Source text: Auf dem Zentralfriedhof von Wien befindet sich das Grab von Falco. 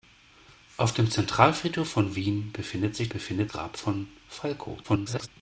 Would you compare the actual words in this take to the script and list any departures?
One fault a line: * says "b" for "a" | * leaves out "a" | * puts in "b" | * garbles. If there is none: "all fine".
* says "befindet" for "das"
* garbles